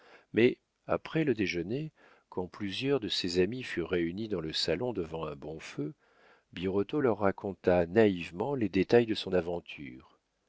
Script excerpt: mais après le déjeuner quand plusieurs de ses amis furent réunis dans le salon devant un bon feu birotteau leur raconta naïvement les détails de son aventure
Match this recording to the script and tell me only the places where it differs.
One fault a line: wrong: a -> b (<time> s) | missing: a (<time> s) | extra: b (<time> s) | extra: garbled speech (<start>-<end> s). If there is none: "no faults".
no faults